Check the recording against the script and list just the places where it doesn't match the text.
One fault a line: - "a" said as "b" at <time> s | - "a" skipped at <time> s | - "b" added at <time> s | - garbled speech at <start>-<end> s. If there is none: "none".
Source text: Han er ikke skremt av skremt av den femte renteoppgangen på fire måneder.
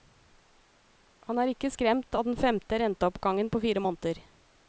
- "skremt av" skipped at 2.3 s